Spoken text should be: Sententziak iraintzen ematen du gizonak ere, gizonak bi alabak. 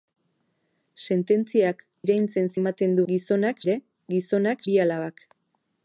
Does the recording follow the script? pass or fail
pass